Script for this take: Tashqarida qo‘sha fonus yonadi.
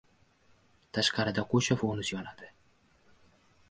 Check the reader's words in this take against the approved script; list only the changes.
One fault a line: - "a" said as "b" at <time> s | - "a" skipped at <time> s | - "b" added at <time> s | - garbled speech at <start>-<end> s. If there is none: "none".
none